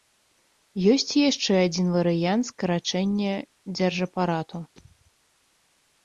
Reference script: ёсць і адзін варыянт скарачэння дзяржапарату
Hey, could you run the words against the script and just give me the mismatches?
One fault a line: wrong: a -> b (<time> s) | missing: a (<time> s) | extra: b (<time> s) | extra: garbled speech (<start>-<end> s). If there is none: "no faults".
extra: яшчэ (1.3 s)